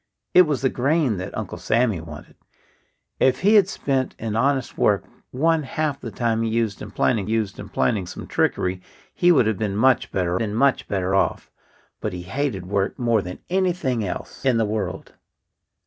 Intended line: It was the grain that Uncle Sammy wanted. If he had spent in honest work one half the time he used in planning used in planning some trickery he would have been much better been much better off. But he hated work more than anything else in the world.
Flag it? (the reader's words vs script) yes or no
no